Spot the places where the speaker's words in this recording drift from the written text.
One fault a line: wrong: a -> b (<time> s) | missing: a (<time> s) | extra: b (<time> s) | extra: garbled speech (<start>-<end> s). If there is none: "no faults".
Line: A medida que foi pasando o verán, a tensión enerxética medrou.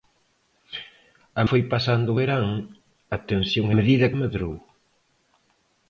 missing: medida que (1.4 s)
wrong: enerxética -> medida (3.8 s)